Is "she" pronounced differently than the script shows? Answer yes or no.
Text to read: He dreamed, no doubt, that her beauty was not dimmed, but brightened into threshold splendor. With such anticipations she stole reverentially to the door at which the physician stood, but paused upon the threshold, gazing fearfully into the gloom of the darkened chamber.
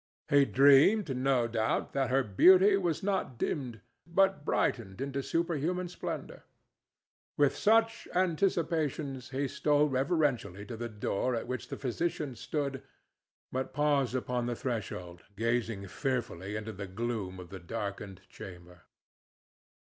yes